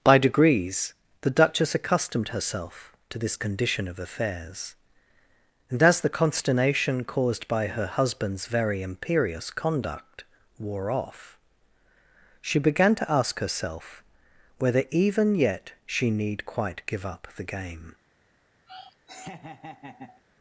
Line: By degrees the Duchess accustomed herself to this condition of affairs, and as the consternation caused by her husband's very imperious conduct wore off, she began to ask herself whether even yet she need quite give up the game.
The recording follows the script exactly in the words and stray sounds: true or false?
false